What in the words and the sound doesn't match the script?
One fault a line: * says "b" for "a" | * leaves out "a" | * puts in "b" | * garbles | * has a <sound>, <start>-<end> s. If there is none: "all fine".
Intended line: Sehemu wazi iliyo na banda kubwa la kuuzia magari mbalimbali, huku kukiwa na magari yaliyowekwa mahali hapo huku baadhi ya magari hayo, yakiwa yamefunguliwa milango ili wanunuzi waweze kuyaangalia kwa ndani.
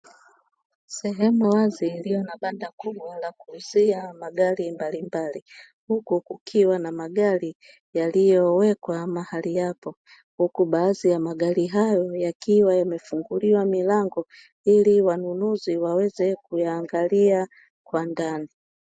all fine